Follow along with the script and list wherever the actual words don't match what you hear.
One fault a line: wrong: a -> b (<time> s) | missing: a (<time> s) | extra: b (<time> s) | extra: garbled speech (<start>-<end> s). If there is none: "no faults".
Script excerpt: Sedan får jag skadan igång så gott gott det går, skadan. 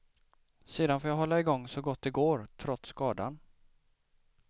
wrong: skadan -> hålla (1.2 s)
missing: gott (2.0 s)
extra: trots (2.6 s)